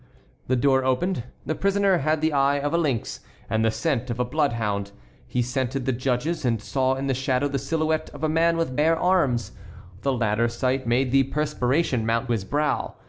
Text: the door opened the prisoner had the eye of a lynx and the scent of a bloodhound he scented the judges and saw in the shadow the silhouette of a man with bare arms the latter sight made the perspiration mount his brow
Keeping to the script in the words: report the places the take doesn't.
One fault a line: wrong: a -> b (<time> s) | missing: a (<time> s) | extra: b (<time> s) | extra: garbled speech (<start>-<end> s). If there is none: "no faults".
no faults